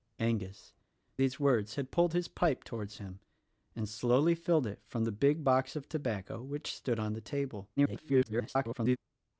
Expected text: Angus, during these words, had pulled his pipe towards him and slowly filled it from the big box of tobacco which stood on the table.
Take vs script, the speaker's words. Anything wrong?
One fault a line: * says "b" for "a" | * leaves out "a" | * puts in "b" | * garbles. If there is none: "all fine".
* leaves out "during"
* garbles